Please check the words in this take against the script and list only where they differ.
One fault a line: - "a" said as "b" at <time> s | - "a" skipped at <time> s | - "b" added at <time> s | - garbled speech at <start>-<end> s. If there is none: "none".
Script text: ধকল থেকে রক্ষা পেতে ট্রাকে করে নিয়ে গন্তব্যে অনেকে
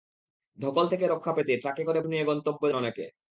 none